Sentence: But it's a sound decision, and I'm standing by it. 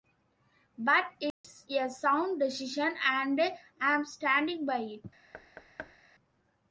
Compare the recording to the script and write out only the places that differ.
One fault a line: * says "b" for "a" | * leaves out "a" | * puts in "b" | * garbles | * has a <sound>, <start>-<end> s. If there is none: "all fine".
* has a dropout, 1.3-1.4 s
* has a thud, 5.3-6.0 s